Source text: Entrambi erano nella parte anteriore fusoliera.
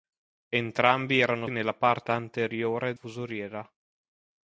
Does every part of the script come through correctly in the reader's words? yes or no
yes